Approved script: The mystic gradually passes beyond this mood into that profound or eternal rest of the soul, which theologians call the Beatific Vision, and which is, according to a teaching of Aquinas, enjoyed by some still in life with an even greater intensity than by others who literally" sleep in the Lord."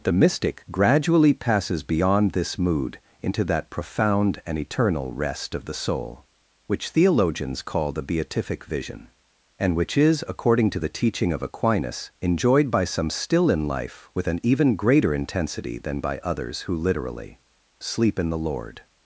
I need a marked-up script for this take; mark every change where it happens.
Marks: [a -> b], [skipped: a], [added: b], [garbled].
The mystic gradually passes beyond this mood into that profound [or -> and] eternal rest of the soul, which theologians call the Beatific Vision, and which is, according to [a -> the] teaching of Aquinas, enjoyed by some still in life with an even greater intensity than by others who literally" sleep in the Lord."